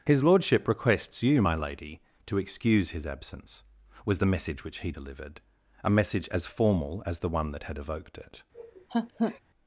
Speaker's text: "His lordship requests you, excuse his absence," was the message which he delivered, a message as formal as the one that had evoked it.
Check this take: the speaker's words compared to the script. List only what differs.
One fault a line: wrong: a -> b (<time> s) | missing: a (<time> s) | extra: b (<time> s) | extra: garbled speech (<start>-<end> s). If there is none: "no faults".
extra: my lady to (1.4 s)